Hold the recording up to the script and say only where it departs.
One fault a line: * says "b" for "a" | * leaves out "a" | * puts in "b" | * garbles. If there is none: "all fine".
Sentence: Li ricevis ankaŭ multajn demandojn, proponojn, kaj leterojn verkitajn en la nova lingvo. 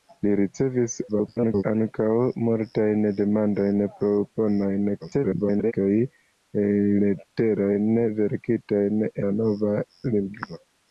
* garbles
* garbles
* leaves out "en"